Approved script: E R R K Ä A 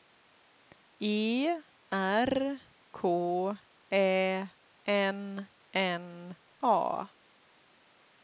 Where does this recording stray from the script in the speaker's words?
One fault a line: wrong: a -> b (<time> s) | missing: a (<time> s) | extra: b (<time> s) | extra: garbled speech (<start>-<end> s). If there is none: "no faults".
missing: R (2.6 s)
extra: N N (4.9 s)